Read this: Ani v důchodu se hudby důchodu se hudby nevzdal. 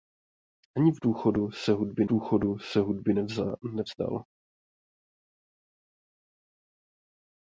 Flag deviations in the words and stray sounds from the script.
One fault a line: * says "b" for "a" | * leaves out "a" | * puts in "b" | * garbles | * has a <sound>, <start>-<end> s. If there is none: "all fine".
all fine